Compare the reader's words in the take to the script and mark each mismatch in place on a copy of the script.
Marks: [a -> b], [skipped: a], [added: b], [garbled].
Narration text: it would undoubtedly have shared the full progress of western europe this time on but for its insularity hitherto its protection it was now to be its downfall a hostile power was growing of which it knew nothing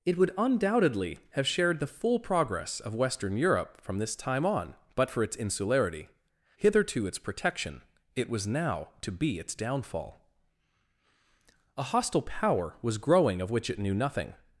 it would undoubtedly have shared the full progress of western europe [added: from] this time on but for its insularity hitherto its protection it was now to be its downfall a hostile power was growing of which it knew nothing